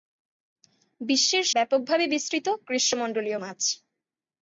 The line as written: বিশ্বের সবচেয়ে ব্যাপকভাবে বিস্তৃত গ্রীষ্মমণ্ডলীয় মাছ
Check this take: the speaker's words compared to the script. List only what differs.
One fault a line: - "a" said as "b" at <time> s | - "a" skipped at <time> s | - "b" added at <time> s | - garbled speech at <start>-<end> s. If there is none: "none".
- "সবচেয়ে" skipped at 1.4 s